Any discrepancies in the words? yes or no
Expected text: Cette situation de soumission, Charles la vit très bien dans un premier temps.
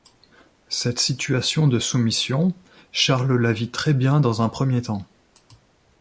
no